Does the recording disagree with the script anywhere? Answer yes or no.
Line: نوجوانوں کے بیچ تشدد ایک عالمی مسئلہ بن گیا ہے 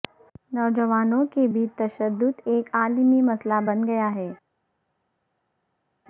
no